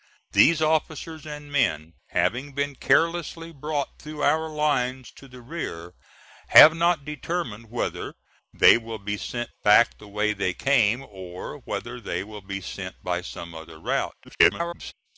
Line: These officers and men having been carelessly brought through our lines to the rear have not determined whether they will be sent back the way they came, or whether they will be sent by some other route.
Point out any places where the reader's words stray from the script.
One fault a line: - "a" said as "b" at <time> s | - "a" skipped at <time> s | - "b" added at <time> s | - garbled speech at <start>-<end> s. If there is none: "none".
- garbled speech at 14.2-14.9 s